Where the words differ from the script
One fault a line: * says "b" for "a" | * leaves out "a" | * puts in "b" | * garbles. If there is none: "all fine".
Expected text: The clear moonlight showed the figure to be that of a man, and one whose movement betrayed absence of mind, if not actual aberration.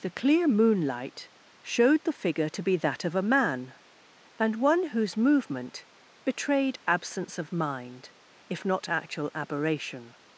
all fine